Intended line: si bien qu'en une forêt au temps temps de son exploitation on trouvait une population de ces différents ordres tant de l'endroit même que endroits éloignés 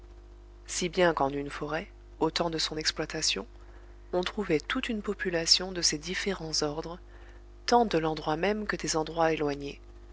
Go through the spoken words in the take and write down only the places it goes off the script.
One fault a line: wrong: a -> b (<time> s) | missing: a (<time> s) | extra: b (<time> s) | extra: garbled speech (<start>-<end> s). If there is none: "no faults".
missing: temps (2.5 s)
extra: toute (4.6 s)
extra: des (8.8 s)